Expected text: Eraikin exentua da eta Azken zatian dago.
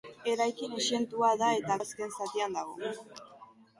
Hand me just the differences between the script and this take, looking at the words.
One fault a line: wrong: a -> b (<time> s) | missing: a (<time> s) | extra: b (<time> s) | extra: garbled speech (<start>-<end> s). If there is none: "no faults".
no faults